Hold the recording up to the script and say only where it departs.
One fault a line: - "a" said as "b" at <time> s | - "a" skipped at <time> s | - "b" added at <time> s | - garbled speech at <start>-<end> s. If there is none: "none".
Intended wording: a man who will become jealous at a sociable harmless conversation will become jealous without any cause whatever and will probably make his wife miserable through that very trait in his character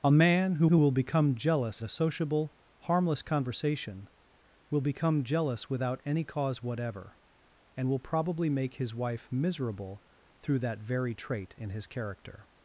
- "who" added at 0.7 s
- "at" skipped at 1.8 s